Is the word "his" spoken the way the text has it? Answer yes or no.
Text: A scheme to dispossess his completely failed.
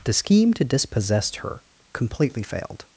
no